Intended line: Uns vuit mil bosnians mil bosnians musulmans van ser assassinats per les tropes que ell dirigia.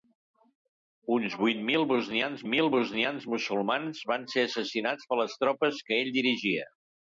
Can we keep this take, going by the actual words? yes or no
yes